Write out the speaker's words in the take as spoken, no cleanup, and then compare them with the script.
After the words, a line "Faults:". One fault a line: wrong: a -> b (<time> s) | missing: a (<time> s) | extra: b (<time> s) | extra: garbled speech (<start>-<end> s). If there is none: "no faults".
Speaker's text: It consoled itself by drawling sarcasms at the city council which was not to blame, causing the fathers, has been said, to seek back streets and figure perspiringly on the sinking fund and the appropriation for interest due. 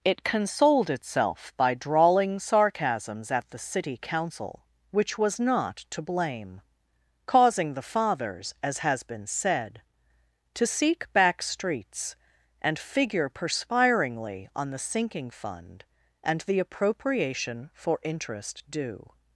It consoled itself by drawling sarcasms at the city council which was not to blame, causing the fathers, as has been said, to seek back streets and figure perspiringly on the sinking fund and the appropriation for interest due.
Faults:
extra: as (8.6 s)